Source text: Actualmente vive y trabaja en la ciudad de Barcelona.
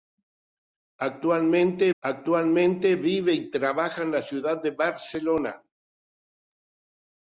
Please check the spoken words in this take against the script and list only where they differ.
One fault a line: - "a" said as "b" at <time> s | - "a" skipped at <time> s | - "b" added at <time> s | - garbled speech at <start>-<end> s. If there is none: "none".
- "actualmente" added at 2.0 s